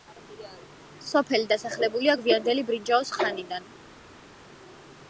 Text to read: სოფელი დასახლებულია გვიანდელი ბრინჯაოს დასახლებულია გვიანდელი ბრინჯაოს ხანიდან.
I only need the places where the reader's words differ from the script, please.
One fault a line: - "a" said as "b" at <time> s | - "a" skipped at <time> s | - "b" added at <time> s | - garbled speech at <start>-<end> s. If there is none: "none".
- "დასახლებულია გვიანდელი ბრინჯაოს" skipped at 3.1 s